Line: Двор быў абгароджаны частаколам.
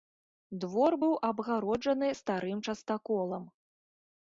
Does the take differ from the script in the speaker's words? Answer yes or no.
yes